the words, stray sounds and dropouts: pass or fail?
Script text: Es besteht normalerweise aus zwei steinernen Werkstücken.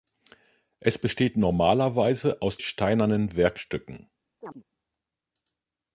fail